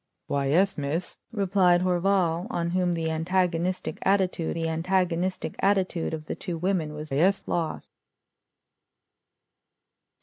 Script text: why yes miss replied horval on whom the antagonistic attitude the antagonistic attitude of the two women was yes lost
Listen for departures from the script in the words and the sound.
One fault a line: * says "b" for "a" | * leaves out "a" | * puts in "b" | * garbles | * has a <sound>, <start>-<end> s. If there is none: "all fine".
all fine